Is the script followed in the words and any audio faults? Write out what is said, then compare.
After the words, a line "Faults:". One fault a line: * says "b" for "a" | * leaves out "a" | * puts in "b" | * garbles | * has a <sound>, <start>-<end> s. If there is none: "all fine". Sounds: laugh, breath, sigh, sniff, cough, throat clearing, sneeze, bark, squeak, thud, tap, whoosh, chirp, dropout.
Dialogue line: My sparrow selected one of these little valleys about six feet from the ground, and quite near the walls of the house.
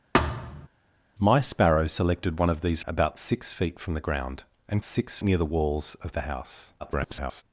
My sparrow selected one of these about six feet from the ground, and six near the walls of the house. [garbled]
Faults:
* has a thud, 0.1-0.7 s
* leaves out "little valleys"
* says "six" for "quite"
* garbles